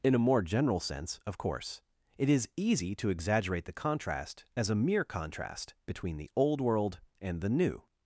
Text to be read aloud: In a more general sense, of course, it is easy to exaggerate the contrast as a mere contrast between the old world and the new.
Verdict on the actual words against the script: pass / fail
pass